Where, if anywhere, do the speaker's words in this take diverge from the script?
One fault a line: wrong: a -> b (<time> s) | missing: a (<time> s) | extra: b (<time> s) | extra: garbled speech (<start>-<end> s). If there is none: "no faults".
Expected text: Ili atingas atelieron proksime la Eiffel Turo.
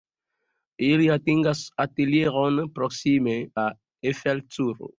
no faults